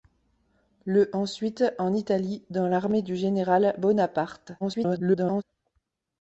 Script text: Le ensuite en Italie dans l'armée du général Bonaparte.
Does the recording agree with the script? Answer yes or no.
no